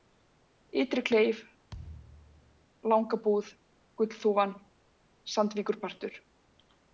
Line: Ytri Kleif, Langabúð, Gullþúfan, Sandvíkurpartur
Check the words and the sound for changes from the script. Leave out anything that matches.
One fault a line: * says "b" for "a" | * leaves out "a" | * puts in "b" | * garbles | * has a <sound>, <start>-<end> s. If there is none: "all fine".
* has a thud, 1.7-2.7 s